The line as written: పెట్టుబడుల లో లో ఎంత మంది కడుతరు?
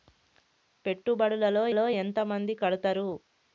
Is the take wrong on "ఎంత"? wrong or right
right